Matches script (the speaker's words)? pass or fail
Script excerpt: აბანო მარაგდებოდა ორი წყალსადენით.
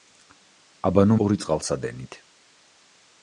fail